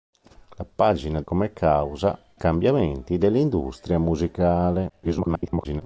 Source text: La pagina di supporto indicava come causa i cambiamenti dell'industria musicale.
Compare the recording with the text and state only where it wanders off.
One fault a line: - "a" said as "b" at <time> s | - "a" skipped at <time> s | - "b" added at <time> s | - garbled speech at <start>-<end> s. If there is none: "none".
- "di supporto indicava" skipped at 1.2 s
- "i" skipped at 2.2 s
- garbled speech at 4.9-5.8 s